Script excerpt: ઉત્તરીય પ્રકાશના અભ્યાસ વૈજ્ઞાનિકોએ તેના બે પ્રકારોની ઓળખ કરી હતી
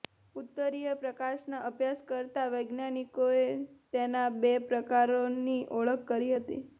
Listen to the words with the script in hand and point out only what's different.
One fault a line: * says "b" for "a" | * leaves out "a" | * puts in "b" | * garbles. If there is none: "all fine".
* puts in "કરતા"